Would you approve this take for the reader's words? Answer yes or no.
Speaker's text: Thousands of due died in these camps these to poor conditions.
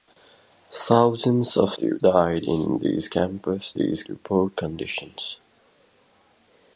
yes